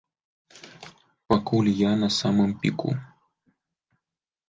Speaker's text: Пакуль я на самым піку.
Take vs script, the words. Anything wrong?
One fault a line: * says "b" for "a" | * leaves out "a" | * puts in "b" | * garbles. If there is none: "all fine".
all fine